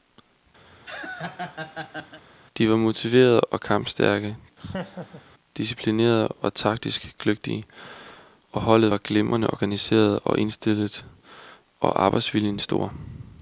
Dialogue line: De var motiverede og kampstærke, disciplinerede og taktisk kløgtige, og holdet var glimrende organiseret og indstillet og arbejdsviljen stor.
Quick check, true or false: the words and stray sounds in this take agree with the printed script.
false